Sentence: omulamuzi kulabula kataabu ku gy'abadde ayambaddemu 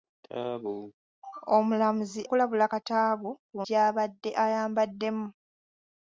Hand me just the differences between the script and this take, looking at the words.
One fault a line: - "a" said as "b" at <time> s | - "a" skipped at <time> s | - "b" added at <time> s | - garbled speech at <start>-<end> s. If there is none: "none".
none